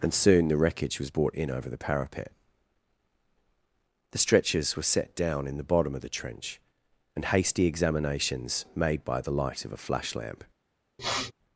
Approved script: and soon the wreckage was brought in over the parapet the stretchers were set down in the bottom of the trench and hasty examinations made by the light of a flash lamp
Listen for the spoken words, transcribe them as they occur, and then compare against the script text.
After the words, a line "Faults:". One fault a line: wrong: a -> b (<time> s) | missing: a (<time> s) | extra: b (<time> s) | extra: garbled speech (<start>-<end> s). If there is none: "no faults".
and soon the wreckage was brought in over the parapet the stretchers were set down in the bottom of the trench and hasty examinations made by the light of a flash lamp
Faults:
no faults